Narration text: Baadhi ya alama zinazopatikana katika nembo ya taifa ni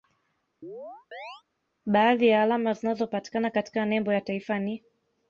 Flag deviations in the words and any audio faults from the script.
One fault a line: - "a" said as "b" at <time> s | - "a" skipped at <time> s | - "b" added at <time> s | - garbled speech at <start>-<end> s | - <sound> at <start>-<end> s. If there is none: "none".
- chirp at 0.6-1.4 s